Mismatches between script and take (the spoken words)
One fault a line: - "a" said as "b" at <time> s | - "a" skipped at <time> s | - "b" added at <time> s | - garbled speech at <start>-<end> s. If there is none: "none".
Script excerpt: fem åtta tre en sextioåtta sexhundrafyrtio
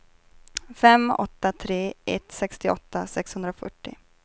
- "en" said as "ett" at 2.0 s